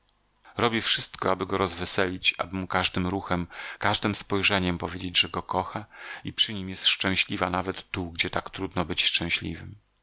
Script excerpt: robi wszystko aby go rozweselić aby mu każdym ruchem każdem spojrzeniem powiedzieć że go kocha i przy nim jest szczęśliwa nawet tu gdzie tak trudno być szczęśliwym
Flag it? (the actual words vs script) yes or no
no